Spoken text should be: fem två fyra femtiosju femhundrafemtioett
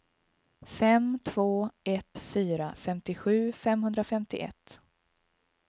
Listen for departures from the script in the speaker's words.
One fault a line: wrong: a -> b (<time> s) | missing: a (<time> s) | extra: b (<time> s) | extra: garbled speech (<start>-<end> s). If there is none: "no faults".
extra: ett (1.8 s)